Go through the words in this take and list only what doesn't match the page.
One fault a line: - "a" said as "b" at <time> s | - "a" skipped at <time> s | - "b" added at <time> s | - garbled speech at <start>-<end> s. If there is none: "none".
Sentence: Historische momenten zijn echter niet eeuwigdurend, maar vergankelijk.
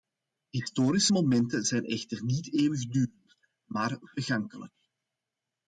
none